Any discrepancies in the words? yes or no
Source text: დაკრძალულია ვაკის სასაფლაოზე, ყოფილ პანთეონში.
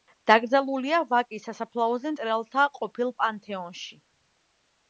yes